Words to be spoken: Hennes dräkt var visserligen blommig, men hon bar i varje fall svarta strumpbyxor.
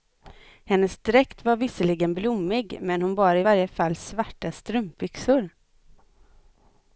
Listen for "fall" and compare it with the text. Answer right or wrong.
right